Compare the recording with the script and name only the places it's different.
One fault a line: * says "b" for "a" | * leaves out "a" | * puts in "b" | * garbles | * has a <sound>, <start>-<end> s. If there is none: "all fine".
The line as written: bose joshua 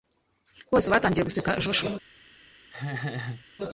* puts in "batangiye guseka"
* has a laugh, 2.7-3.5 s